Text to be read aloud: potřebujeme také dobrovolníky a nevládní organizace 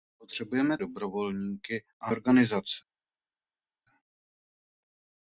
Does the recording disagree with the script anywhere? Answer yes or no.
yes